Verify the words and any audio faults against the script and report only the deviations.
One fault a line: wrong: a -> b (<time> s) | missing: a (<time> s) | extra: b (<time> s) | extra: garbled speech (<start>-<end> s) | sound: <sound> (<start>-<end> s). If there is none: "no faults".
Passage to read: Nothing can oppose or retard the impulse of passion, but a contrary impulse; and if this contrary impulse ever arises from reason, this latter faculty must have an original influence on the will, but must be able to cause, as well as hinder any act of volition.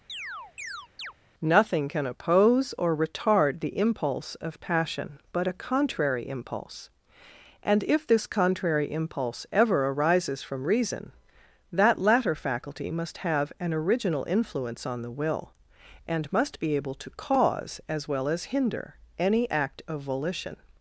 sound: chirp (0.1-1.1 s)
wrong: this -> that (11.7 s)
wrong: but -> and (16.1 s)